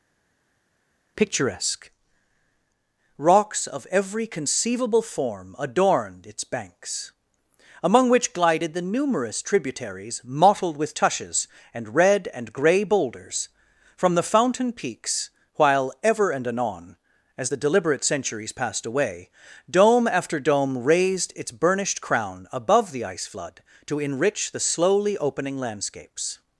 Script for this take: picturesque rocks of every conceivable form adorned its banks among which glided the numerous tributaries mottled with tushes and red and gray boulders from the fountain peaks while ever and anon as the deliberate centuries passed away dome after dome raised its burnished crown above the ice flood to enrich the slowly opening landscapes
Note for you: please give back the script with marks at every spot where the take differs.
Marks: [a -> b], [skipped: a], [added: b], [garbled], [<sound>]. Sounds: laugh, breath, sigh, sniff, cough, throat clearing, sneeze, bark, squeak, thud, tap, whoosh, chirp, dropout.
picturesque rocks of every conceivable form adorned its banks among which glided the numerous tributaries mottled with tushes and red and gray boulders from the fountain peaks while ever and anon as the deliberate centuries passed away dome after dome raised its burnished crown above the ice flood to enrich the slowly opening landscapes